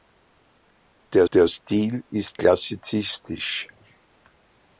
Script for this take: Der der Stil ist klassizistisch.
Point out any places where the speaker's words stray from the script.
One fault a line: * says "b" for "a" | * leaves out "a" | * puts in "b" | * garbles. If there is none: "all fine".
all fine